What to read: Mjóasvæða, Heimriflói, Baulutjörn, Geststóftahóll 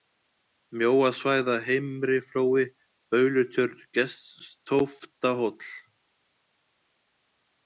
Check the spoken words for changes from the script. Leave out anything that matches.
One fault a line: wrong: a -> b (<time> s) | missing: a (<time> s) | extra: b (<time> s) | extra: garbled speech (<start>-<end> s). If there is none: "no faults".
no faults